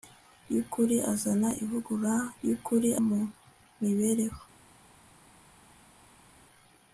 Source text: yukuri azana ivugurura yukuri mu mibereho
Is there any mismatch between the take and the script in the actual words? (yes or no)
no